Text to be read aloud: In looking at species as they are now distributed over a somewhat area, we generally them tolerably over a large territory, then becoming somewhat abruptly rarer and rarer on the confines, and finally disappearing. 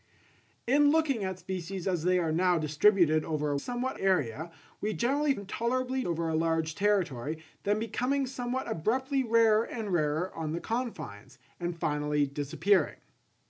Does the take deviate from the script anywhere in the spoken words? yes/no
no